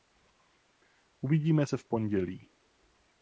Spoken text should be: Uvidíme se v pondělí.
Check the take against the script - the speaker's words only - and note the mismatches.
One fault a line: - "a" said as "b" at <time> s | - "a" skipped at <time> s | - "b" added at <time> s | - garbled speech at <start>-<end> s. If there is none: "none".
none